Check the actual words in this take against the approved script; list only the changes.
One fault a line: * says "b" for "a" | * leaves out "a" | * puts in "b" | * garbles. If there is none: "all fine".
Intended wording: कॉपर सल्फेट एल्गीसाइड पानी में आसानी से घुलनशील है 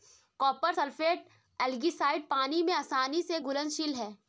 all fine